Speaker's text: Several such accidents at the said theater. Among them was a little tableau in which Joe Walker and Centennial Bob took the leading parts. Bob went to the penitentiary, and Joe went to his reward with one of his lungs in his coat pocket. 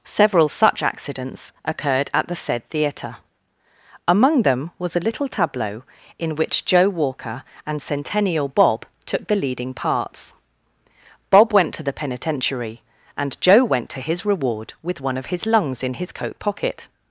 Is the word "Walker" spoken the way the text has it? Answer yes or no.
yes